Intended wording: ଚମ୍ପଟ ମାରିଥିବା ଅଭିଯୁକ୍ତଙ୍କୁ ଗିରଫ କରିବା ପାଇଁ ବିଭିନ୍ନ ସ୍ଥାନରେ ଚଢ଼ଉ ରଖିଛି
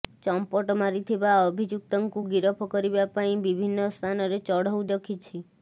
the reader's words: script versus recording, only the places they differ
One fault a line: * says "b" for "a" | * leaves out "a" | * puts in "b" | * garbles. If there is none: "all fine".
all fine